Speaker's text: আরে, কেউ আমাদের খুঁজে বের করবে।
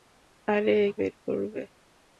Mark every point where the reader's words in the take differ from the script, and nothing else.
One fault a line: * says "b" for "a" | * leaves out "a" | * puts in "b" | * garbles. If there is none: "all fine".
* leaves out "কেউ আমাদের খুঁজে"